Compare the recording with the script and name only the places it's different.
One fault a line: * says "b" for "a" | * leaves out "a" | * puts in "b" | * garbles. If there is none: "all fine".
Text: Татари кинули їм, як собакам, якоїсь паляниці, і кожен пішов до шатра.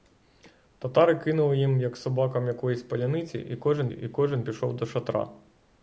* puts in "і кожен"